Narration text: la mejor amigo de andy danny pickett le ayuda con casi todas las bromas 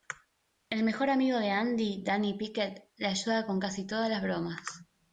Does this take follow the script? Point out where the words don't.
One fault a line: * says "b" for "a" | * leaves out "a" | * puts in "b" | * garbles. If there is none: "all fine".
* says "el" for "la"